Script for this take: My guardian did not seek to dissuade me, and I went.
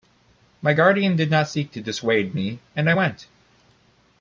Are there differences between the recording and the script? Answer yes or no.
no